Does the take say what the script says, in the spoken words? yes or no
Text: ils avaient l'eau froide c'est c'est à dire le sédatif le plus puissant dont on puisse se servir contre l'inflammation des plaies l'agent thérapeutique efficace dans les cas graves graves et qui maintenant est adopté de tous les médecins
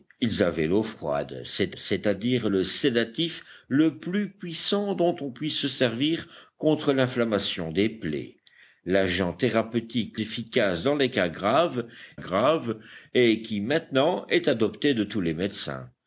yes